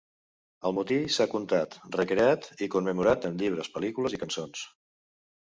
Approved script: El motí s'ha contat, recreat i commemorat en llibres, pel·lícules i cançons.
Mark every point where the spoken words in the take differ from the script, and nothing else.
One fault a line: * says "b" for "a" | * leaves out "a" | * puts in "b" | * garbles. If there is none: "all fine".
all fine